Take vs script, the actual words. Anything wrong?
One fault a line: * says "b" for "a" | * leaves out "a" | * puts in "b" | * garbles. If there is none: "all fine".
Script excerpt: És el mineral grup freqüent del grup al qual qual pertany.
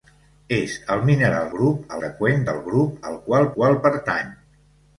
all fine